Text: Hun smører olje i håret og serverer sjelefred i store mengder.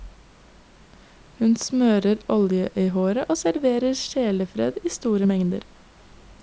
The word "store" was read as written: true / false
true